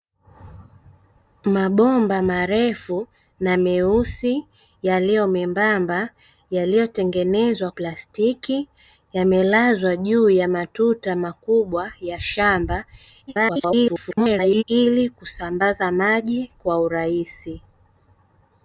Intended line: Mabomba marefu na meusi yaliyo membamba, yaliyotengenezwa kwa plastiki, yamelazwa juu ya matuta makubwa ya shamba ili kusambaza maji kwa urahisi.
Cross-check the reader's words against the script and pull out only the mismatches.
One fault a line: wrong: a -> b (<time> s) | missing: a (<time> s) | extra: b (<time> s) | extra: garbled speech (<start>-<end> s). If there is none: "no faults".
missing: kwa (7.7 s)
extra: garbled speech (13.3-14.6 s)